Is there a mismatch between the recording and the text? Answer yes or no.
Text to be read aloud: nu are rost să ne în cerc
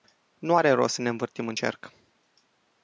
yes